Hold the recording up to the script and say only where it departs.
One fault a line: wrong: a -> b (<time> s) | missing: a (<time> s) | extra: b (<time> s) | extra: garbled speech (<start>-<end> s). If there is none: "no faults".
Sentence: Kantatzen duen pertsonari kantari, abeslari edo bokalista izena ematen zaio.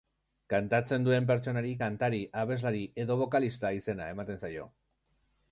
no faults